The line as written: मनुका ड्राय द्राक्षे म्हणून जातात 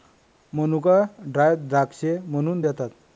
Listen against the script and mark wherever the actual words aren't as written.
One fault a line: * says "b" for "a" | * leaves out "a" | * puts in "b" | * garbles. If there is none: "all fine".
all fine